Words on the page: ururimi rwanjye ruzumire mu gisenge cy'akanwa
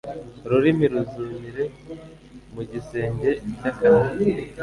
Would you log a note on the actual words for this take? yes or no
yes